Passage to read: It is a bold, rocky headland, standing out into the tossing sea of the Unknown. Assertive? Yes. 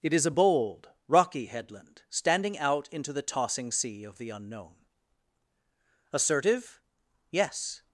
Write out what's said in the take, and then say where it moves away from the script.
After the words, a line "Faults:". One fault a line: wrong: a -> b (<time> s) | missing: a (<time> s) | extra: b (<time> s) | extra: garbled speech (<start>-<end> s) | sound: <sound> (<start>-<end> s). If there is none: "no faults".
It is a bold, rocky headland, standing out into the tossing sea of the Unknown. Assertive? Yes.
Faults:
no faults